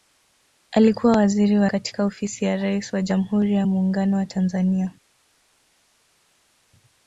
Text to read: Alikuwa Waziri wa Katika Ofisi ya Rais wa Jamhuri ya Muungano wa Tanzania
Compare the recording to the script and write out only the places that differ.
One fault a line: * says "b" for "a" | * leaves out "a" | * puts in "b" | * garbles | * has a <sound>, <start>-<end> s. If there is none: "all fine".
all fine